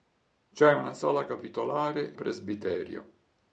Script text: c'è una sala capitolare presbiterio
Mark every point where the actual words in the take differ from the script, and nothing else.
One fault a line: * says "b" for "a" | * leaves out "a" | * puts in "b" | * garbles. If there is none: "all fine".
all fine